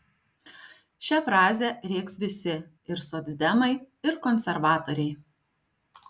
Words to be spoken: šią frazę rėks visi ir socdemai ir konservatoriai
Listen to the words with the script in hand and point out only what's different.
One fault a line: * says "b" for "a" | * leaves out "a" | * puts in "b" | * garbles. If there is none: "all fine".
all fine